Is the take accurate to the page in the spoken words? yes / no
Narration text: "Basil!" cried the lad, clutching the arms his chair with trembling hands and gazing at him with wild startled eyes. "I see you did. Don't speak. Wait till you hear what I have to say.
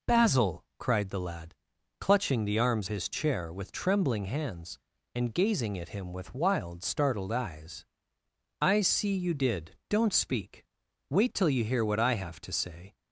yes